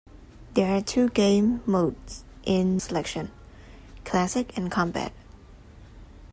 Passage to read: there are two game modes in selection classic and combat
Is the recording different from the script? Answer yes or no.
no